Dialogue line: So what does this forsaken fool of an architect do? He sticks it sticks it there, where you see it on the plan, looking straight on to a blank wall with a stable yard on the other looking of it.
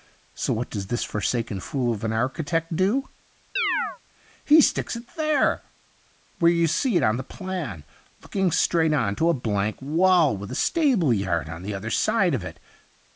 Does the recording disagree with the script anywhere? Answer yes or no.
yes